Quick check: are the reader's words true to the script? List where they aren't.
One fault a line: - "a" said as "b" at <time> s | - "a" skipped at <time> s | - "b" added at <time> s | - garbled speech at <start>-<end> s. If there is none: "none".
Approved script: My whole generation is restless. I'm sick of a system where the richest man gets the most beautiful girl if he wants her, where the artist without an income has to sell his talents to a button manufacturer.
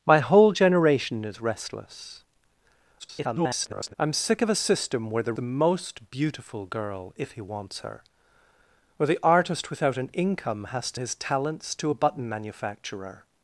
- garbled speech at 3.0-3.9 s
- "richest man gets" skipped at 5.3 s
- "sell" skipped at 11.0 s